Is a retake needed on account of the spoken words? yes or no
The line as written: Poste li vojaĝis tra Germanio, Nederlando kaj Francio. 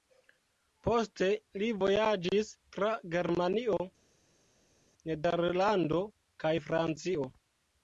no